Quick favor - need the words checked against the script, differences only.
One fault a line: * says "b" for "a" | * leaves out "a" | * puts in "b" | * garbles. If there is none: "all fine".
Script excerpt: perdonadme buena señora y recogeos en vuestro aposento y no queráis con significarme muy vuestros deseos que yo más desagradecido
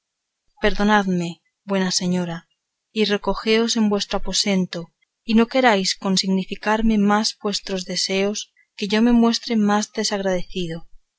* says "más" for "muy"
* puts in "me muestre"